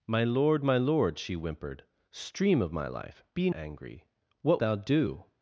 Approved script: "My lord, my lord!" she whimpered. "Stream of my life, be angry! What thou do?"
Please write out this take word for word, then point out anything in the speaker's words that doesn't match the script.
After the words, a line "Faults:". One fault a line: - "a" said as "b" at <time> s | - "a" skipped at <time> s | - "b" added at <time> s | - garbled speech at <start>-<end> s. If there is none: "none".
"My lord, my lord!" she whimpered. "Stream of my life, be angry! What thou do?"
Faults:
none